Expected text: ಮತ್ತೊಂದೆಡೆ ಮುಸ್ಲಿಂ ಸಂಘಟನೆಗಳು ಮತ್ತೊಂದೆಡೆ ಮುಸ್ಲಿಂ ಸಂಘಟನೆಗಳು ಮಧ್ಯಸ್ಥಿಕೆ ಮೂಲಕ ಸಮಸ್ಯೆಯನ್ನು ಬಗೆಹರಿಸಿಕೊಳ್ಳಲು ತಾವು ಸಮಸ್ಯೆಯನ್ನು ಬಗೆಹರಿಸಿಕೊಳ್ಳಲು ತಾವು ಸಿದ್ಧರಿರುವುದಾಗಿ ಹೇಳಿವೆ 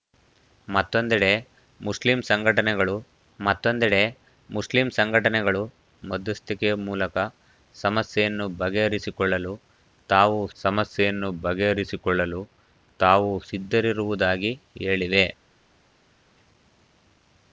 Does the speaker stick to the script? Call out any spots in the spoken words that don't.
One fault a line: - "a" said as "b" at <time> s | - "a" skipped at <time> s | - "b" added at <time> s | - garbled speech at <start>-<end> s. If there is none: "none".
none